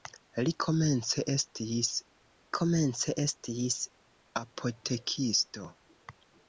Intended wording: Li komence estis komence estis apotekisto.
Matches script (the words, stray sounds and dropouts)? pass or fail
pass